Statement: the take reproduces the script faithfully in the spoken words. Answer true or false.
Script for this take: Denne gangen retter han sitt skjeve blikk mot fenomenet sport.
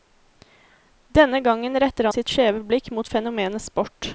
false